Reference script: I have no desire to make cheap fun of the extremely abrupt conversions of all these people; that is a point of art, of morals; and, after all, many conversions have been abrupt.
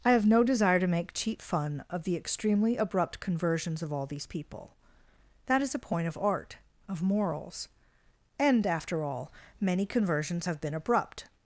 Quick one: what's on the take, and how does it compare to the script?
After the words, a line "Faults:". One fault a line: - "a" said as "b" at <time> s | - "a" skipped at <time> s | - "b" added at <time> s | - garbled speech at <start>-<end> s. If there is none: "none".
I have no desire to make cheap fun of the extremely abrupt conversions of all these people; that is a point of art, of morals; and, after all, many conversions have been abrupt.
Faults:
none